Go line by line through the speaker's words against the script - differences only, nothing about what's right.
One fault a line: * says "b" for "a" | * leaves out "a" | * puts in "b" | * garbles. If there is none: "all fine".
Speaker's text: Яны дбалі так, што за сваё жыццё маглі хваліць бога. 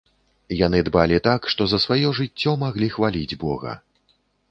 all fine